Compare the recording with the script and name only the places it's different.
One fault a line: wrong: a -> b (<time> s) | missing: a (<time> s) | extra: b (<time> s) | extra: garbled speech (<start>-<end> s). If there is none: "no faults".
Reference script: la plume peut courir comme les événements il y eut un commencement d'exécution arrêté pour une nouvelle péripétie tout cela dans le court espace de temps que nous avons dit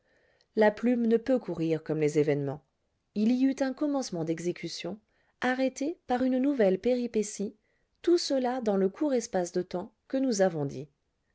extra: ne (1.1 s)
wrong: pour -> par (6.1 s)